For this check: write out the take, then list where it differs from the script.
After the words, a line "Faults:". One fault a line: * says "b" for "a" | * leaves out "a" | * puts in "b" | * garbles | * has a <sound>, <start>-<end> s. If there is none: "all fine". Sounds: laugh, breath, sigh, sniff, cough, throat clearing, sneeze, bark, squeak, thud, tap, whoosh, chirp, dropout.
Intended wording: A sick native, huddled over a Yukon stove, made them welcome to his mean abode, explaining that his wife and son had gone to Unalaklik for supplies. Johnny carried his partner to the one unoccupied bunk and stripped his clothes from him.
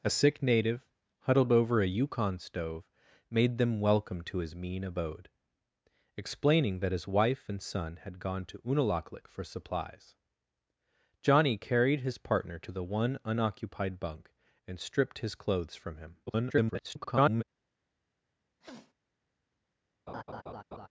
A sick native, huddled over a Yukon stove, made them welcome to his mean abode, explaining that his wife and son had gone to Unalaklik for supplies. Johnny carried his partner to the one unoccupied bunk and stripped his clothes from him. [garbled]
Faults:
* garbles
* has a sniff, 18.6-18.9 s
* has a laugh, 20.1-20.9 s